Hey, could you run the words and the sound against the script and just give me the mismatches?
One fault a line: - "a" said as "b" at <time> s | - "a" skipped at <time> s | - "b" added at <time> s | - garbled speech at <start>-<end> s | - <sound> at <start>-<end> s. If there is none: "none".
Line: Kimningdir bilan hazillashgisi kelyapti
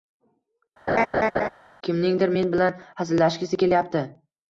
- laugh at 0.9-1.5 s
- "men" added at 2.4 s